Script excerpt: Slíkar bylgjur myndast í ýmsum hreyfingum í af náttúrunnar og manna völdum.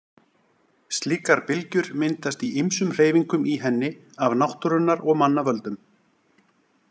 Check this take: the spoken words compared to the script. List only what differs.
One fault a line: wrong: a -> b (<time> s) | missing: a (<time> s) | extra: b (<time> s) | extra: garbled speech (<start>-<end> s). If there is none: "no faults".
extra: henni (3.6 s)